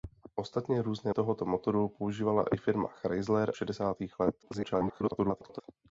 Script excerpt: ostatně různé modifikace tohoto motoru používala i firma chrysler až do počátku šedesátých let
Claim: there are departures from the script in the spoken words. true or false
true